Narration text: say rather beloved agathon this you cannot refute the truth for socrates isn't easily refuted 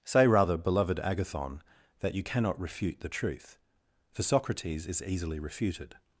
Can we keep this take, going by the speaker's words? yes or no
no